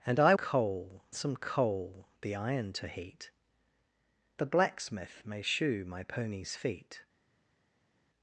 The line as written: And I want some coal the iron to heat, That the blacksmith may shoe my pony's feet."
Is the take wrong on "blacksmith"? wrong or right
right